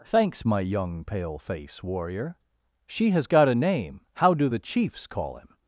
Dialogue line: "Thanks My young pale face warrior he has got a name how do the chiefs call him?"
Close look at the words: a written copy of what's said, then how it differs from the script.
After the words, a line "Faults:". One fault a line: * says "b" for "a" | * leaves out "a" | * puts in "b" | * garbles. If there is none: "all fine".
"Thanks My young pale face warrior she has got a name how do the chiefs call him?"
Faults:
* says "she" for "he"